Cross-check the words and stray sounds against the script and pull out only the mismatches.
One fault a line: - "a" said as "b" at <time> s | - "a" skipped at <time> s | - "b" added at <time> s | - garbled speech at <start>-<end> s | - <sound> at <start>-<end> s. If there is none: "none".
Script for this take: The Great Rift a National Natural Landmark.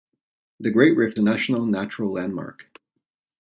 none